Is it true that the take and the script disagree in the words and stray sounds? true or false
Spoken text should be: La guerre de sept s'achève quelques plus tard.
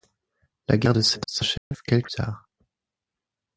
true